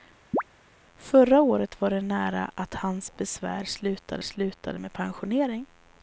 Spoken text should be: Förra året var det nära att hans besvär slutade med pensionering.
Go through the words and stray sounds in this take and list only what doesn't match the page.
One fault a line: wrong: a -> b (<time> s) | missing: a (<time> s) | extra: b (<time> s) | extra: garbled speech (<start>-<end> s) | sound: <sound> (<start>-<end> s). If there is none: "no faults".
sound: chirp (0.3-0.4 s)
extra: slutade (4.2 s)